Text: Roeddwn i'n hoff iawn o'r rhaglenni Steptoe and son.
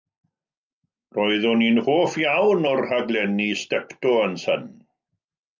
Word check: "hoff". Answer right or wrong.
right